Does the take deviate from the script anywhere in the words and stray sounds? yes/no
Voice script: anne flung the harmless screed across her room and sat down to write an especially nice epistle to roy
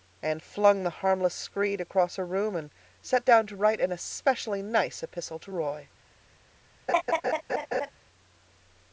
yes